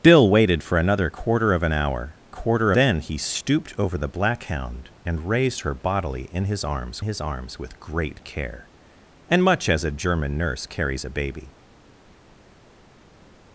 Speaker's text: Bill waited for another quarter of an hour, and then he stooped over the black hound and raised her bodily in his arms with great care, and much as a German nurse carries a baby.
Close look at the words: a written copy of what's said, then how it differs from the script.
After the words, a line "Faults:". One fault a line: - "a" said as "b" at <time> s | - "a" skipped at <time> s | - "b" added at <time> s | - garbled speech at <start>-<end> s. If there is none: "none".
Bill waited for another quarter of an hour, quarter then he stooped over the black hound and raised her bodily in his arms his arms with great care, and much as a German nurse carries a baby.
Faults:
- "and" said as "quarter" at 2.3 s
- "his arms" added at 7.0 s